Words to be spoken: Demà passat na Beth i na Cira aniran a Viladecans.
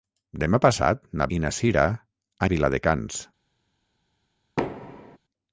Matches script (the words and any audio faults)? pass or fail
fail